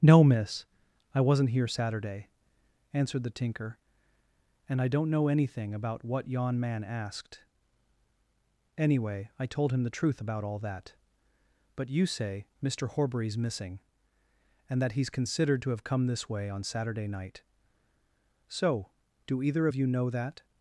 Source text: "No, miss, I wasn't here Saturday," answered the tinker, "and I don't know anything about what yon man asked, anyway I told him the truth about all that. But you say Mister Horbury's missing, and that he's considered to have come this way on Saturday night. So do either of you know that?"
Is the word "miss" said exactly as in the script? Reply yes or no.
yes